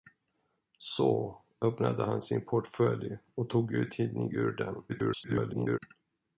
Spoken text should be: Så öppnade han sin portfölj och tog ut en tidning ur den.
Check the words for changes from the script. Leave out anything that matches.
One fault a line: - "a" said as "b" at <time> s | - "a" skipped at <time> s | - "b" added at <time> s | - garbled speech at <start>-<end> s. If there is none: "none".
- "en" skipped at 4.0 s
- garbled speech at 4.9-5.8 s